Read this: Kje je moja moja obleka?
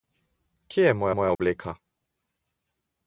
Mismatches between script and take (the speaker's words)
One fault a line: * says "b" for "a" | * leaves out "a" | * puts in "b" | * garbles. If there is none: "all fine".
all fine